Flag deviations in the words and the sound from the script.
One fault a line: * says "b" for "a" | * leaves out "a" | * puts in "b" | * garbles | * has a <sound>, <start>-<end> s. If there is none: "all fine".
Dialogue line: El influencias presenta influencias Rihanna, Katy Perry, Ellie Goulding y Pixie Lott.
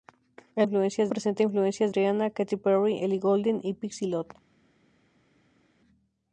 all fine